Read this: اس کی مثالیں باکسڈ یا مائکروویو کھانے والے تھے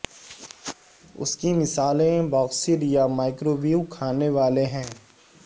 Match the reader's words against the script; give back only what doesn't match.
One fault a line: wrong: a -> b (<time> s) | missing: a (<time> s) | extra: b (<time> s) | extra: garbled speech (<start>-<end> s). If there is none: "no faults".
wrong: تھے -> ہیں (4.6 s)